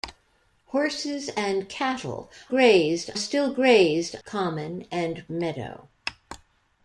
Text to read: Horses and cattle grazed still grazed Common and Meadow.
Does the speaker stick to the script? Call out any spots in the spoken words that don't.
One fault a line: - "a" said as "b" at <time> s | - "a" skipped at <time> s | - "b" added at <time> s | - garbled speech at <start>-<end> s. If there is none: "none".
none